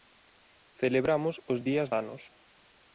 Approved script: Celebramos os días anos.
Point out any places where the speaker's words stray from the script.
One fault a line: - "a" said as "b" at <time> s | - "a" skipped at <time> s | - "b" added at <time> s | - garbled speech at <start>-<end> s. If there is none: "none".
none